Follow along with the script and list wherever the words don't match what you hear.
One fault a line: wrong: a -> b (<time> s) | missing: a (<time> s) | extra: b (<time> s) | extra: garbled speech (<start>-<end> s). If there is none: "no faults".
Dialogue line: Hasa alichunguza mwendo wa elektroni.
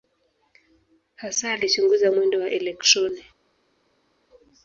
no faults